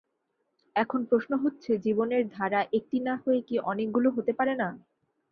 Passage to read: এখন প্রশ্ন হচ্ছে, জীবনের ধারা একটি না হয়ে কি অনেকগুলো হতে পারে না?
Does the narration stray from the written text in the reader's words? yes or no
no